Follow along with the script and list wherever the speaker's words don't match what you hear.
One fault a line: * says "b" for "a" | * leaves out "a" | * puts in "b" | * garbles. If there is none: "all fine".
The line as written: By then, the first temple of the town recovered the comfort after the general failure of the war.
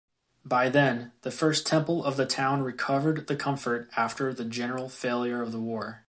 all fine